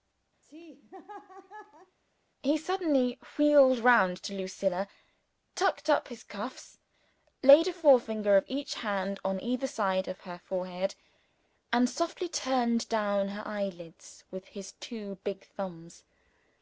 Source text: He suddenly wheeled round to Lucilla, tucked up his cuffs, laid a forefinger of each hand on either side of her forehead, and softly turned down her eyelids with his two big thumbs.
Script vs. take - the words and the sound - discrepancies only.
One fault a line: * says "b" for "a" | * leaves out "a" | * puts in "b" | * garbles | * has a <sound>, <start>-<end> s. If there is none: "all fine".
* has a laugh, 0.4-2.0 s